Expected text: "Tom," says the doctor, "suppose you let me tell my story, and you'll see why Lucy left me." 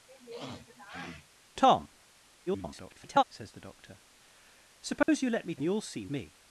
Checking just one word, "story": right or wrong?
wrong